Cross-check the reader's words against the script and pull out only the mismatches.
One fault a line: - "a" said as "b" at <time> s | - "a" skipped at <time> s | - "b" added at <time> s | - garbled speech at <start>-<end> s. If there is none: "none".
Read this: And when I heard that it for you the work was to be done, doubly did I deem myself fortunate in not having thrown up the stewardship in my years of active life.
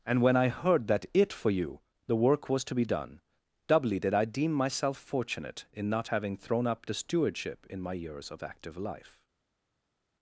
none